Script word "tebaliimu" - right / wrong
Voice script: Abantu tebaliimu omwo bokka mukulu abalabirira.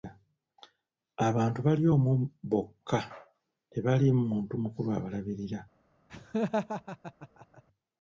wrong